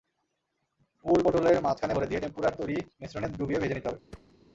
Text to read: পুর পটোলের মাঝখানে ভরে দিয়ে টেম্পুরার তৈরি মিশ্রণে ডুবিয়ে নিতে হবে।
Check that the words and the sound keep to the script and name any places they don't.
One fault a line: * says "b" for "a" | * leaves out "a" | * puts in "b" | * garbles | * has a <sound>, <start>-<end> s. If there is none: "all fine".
* puts in "ভেজে"
* has a thud, 4.1-4.3 s